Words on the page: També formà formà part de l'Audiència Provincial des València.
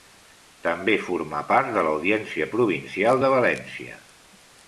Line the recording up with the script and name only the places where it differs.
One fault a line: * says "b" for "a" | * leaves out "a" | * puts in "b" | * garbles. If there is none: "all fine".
* leaves out "formà"
* says "de" for "des"